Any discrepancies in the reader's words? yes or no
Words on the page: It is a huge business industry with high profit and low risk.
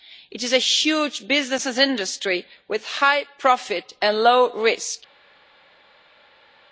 no